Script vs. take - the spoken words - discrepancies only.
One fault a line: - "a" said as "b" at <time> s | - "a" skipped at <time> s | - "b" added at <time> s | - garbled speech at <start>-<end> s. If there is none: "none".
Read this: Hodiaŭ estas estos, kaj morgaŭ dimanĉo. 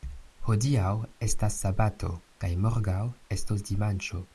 - "estos" said as "sabato" at 1.6 s
- "estos" added at 3.4 s